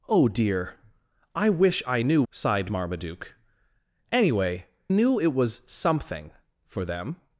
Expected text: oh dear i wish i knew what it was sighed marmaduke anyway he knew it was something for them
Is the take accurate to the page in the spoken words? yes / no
no